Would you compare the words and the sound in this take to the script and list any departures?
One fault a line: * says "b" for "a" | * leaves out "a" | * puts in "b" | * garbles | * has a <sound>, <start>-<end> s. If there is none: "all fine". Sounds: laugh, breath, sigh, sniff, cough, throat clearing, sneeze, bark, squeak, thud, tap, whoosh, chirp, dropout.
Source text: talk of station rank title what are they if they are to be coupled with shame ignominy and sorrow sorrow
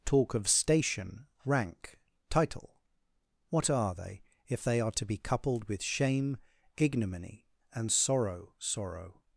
all fine